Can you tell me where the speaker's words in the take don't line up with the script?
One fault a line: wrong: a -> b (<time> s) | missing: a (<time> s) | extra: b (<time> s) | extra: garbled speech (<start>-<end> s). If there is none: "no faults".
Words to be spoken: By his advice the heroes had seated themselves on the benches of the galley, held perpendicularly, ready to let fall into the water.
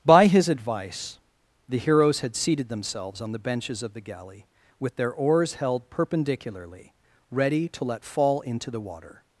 extra: with their oars (4.8 s)